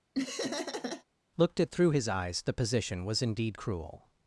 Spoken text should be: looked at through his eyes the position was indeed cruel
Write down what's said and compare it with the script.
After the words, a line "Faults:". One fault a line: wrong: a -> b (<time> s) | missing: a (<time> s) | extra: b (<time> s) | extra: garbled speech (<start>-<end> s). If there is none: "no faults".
looked at through his eyes the position was indeed cruel
Faults:
no faults